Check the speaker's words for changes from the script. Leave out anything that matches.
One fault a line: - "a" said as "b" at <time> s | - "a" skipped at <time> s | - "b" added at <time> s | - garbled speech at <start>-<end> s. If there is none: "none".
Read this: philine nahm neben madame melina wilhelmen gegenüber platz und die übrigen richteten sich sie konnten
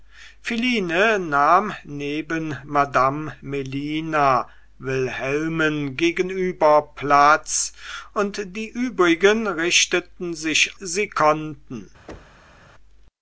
none